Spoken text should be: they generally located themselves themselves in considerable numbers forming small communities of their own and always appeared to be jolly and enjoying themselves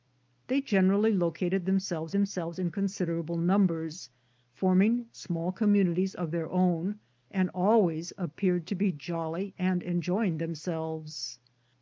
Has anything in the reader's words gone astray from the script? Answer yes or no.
no